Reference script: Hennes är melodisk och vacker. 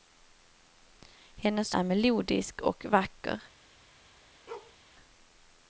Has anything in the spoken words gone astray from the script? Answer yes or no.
no